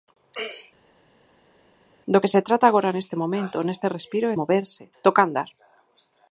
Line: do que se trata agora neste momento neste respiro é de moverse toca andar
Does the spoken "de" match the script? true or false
false